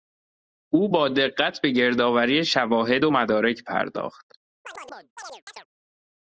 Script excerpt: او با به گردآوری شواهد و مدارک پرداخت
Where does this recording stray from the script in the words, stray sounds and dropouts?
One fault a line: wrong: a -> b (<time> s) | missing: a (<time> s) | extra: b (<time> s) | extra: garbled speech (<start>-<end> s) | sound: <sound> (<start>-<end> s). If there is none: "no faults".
extra: دقت (1.1 s)
sound: chirp (4.6-5.7 s)